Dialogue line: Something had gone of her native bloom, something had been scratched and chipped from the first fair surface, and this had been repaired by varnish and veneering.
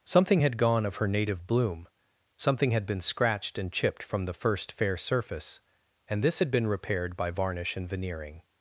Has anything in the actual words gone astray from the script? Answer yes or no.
no